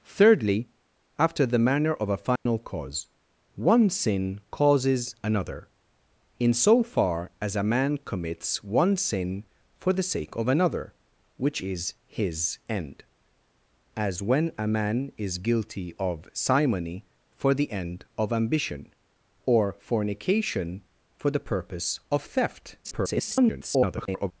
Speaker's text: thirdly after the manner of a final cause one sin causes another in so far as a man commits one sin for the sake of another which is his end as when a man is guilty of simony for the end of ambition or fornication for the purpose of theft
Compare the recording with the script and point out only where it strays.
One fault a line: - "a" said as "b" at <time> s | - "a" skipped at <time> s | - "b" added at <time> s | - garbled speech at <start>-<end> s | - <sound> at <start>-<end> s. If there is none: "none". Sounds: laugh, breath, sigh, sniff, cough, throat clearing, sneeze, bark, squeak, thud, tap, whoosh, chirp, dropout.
- dropout at 2.4-2.5 s
- garbled speech at 22.8-24.3 s